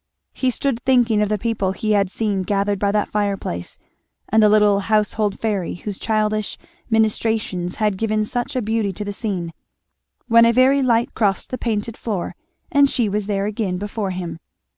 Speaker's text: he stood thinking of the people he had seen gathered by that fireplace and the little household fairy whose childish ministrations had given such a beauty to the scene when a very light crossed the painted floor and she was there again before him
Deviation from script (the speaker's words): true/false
false